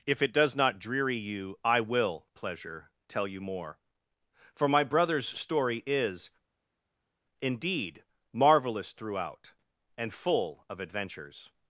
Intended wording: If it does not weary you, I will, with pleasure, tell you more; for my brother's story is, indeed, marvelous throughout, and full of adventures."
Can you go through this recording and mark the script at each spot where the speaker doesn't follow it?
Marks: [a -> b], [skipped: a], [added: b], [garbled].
If it does not [weary -> dreary] you, I will, [skipped: with] pleasure, tell you more; for my brother's story is, indeed, marvelous throughout, and full of adventures."